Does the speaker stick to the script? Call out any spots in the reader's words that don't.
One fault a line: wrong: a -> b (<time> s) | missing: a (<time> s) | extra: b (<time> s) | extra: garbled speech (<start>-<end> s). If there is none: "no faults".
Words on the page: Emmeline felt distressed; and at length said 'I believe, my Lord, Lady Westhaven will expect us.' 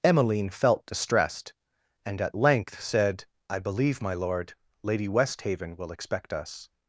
no faults